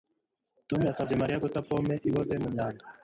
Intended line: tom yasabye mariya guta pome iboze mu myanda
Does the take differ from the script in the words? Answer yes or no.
no